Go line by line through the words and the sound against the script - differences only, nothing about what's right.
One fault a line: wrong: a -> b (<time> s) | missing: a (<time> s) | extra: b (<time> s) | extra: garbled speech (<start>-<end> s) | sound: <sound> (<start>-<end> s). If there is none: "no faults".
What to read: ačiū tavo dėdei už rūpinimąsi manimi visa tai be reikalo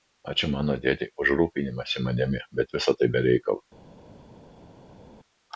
wrong: tavo -> mano (0.5 s)
extra: bet (2.6 s)